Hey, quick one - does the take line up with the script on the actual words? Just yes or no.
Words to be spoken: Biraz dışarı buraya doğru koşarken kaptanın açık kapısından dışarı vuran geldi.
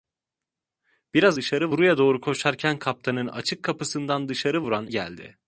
yes